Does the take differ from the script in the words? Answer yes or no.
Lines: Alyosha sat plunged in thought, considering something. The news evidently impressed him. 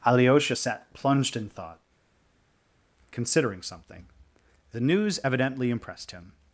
no